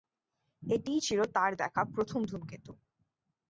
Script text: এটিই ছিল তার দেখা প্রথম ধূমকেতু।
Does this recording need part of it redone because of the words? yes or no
no